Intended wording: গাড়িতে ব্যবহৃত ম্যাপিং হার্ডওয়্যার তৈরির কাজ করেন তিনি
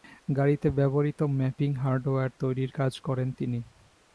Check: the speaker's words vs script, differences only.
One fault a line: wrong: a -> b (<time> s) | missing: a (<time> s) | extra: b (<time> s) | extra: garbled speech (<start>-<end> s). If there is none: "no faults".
no faults